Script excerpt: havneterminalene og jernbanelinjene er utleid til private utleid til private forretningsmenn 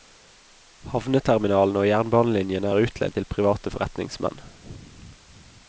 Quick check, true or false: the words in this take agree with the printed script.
false